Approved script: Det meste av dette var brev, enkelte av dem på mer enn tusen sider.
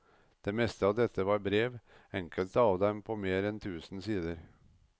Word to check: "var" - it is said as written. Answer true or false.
true